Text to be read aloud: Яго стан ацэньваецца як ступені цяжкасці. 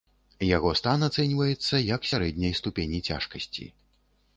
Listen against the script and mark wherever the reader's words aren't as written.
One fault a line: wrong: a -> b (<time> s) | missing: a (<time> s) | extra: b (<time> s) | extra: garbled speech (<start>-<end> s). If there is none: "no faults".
extra: сярэдняй (2.1 s)